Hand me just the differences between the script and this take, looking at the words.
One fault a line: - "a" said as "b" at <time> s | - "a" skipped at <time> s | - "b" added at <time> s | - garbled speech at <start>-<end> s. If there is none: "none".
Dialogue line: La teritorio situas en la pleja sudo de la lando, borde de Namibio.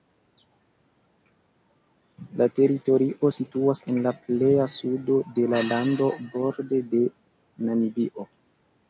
none